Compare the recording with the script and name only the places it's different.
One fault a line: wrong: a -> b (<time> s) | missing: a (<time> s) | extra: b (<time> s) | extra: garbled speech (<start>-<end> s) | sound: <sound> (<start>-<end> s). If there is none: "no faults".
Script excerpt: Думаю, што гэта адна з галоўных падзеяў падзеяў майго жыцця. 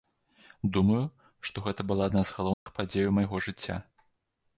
extra: была (1.9 s)
sound: dropout (2.5-2.7 s)
missing: падзеяў (3.1 s)